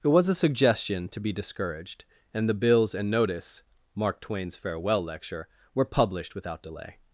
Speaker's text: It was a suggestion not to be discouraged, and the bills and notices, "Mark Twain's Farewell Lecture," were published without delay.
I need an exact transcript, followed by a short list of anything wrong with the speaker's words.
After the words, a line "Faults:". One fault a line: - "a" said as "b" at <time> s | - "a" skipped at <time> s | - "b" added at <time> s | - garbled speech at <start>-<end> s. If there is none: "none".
It was a suggestion to be discouraged, and the bills and notice, "Mark Twain's Farewell Lecture," were published without delay.
Faults:
- "not" skipped at 1.1 s
- "notices" said as "notice" at 3.1 s